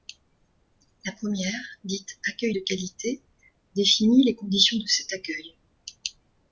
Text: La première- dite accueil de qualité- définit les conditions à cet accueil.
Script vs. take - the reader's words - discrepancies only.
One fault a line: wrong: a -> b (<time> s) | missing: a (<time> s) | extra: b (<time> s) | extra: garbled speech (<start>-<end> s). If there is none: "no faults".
wrong: à -> de (4.8 s)